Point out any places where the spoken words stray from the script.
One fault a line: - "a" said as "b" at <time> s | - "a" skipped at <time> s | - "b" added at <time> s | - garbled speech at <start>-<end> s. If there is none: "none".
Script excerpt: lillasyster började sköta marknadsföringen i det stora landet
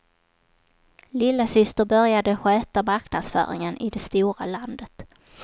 none